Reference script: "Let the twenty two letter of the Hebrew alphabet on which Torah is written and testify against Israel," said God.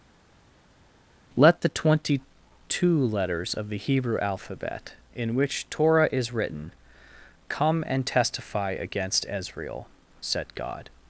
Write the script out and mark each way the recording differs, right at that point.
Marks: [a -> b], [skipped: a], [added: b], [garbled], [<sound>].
"Let the twenty two [letter -> letters] of the Hebrew alphabet [on -> in] which Torah is written [added: come] and testify against Israel," said God.